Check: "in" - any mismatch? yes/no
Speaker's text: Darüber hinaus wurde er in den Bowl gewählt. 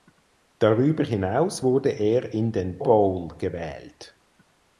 no